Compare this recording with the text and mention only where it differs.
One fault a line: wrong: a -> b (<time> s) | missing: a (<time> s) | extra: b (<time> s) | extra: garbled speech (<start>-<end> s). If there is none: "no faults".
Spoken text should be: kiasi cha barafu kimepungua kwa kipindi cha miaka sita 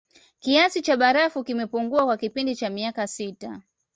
no faults